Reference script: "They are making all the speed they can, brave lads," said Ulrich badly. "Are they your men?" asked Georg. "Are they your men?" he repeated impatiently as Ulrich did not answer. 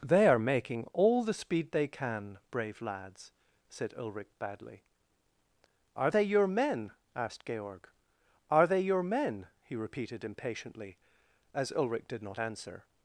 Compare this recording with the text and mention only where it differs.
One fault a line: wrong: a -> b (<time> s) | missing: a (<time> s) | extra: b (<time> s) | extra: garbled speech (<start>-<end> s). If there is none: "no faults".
no faults